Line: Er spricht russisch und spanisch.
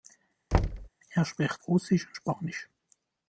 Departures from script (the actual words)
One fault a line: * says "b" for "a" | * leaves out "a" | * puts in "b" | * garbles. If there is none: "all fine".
all fine